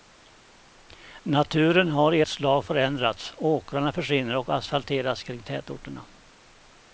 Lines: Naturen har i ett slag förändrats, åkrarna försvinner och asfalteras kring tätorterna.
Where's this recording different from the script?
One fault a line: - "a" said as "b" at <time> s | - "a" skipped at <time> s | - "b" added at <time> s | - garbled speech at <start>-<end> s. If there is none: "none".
none